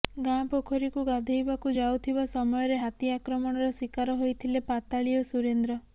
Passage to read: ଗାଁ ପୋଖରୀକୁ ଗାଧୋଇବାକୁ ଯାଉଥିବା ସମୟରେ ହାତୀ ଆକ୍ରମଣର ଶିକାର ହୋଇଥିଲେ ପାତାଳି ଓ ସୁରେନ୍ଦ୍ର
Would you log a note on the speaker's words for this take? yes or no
no